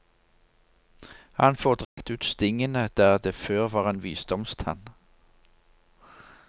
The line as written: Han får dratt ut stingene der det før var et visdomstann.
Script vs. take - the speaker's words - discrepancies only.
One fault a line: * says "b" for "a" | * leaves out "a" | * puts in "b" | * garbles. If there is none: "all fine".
* says "en" for "et"